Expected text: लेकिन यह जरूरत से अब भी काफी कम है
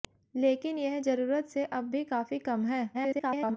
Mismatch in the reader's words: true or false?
true